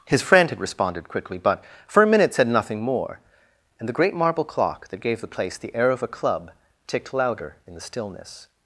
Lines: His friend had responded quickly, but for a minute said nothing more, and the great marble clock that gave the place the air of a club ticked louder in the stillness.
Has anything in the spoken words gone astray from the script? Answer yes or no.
no